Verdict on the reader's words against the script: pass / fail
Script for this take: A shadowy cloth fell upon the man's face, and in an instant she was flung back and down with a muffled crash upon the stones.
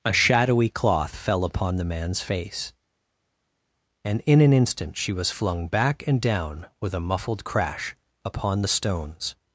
pass